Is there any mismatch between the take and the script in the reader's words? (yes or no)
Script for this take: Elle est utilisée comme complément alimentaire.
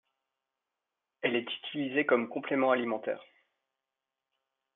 no